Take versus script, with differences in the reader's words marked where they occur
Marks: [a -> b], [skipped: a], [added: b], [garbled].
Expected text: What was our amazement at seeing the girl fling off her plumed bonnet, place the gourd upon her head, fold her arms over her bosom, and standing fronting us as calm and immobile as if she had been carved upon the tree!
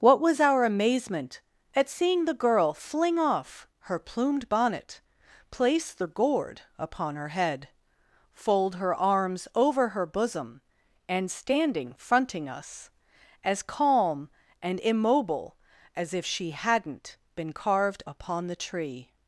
What was our amazement at seeing the girl fling off her plumed bonnet, place the gourd upon her head, fold her arms over her bosom, and standing fronting us as calm and immobile as if she [had -> hadn't] been carved upon the tree!